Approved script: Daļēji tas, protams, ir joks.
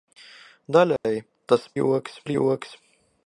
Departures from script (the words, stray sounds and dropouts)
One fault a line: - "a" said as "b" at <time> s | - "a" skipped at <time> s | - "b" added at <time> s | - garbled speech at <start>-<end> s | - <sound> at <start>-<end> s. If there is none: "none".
- dropout at 1.0-1.0 s
- "protams" said as "joks" at 1.8 s